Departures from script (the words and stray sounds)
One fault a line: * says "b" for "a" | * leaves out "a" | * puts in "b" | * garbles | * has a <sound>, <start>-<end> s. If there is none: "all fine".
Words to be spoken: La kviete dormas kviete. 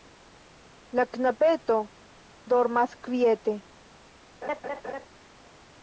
* says "knabeto" for "kviete"
* has a laugh, 4.4-5.1 s